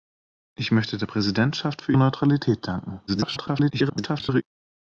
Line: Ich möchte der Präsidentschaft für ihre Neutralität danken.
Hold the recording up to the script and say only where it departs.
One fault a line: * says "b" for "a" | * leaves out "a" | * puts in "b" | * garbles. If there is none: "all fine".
* leaves out "ihre"
* garbles